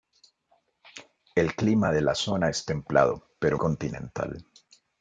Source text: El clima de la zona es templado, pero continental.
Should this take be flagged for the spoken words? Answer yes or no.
no